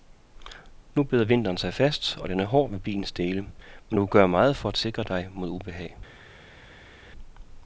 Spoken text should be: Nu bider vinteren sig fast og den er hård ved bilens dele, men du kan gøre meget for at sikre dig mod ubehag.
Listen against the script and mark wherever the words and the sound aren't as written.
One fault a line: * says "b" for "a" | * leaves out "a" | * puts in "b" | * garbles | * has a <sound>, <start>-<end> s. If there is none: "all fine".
all fine